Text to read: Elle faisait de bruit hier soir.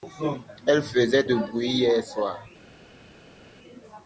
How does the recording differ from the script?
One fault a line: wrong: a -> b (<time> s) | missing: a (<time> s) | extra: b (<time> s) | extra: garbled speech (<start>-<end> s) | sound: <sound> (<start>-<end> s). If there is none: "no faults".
no faults